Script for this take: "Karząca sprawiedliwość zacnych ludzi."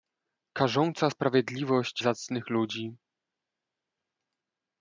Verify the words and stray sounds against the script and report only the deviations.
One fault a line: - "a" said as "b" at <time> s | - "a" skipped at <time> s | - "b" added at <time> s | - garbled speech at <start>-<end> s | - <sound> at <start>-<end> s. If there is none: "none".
none